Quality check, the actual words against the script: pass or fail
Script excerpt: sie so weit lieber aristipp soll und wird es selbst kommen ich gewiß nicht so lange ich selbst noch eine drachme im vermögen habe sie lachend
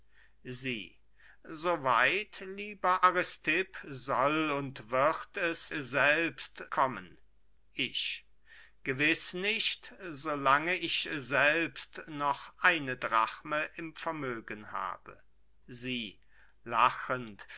pass